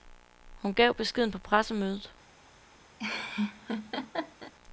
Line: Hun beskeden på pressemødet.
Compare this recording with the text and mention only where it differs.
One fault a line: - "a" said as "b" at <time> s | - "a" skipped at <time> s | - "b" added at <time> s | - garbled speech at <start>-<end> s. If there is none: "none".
- "gav" added at 0.7 s